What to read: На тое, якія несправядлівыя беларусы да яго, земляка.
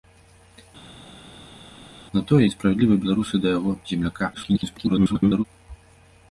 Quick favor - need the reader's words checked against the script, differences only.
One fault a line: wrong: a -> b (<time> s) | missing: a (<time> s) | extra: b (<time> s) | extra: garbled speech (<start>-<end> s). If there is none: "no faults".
missing: якія (2.4 s)
extra: garbled speech (4.3-5.4 s)